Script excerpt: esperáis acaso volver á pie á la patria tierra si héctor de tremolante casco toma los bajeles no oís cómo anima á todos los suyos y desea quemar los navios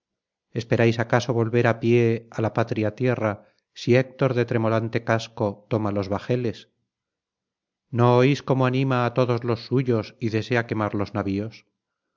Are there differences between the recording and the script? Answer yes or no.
no